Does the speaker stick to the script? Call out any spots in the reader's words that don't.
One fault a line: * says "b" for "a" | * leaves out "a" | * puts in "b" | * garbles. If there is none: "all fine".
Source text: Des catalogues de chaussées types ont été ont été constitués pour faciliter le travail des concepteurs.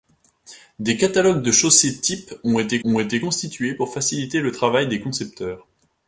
all fine